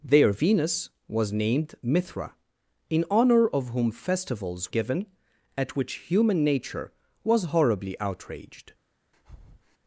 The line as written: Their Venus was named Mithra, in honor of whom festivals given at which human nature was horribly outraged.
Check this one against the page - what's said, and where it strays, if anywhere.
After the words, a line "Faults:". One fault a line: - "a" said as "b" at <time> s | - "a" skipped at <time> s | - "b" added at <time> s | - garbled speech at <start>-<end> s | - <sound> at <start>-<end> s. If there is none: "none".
Their Venus was named Mithra, in honor of whom festivals given at which human nature was horribly outraged.
Faults:
- breath at 9.1-9.8 s